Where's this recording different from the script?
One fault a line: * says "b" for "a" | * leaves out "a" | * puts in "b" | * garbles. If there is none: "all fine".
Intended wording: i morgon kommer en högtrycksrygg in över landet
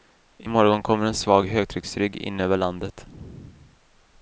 * puts in "svag"